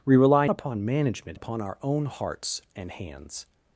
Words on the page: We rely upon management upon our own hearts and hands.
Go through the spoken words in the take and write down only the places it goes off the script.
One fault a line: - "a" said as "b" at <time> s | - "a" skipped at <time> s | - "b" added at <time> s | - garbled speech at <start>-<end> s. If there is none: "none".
none